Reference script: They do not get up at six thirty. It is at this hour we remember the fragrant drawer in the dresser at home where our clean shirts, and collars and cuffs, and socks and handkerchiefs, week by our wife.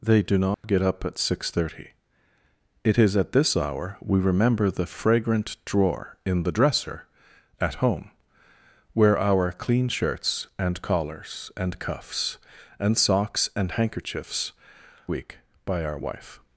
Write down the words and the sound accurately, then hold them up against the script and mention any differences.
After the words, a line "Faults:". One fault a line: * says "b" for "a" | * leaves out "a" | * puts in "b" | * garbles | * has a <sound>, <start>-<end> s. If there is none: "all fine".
They do not get up at six thirty. It is at this hour we remember the fragrant drawer in the dresser at home where our clean shirts, and collars and cuffs, and socks and handkerchiefs, week by our wife.
Faults:
* has a dropout, 0.5-0.6 s